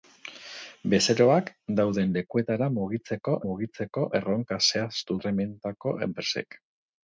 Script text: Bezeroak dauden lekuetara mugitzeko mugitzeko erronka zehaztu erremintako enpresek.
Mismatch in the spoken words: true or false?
false